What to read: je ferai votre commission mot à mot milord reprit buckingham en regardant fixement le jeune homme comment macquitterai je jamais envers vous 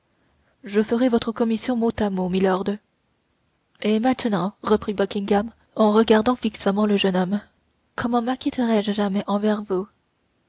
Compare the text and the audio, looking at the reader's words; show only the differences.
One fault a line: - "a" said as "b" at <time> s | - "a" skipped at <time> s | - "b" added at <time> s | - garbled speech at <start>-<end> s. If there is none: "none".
- "et maintenant" added at 3.8 s